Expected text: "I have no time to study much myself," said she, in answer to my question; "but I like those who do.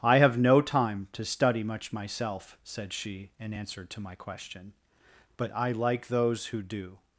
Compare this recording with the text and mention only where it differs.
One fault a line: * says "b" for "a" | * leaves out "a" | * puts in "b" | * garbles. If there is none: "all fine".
all fine